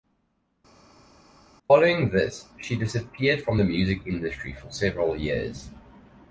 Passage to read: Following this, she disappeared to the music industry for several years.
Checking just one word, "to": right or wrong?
wrong